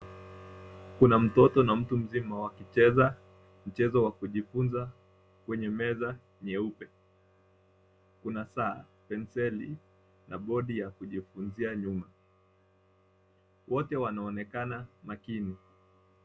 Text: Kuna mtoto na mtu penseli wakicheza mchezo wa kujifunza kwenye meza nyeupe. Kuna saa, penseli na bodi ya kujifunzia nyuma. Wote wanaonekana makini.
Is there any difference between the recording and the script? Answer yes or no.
yes